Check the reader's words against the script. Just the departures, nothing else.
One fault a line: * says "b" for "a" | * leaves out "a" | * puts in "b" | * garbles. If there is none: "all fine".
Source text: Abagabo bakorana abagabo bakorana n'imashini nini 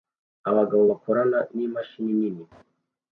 * leaves out "abagabo bakorana"